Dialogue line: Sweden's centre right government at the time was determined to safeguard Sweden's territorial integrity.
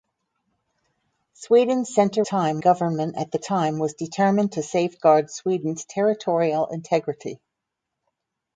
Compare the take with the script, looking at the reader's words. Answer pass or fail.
fail